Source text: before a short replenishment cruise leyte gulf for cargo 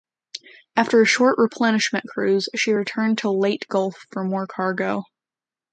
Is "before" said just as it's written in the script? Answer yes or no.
no